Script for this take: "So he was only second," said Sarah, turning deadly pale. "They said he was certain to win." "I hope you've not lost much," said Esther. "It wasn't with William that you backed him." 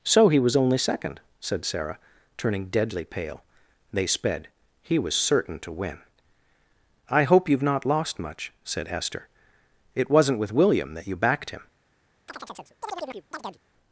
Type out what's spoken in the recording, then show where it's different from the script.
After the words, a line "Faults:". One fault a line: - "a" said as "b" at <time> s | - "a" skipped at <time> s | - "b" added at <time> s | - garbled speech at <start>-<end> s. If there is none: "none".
"So he was only second," said Sarah, turning deadly pale. "They sped he was certain to win." "I hope you've not lost much," said Esther. "It wasn't with William that you backed him."
Faults:
- "said" said as "sped" at 4.1 s